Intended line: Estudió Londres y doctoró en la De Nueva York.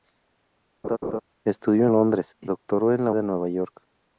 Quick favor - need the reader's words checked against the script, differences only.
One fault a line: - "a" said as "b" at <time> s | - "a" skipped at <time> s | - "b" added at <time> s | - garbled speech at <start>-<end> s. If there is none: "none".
none